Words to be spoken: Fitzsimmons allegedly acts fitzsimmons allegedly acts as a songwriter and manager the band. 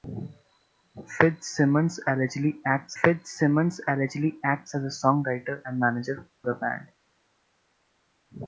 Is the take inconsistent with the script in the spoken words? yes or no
no